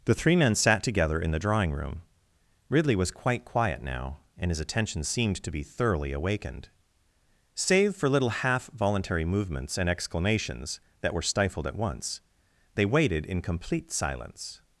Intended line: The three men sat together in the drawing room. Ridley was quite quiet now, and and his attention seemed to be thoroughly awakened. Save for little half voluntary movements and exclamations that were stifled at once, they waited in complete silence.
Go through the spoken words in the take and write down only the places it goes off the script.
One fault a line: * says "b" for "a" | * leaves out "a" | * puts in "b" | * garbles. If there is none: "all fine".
* leaves out "and"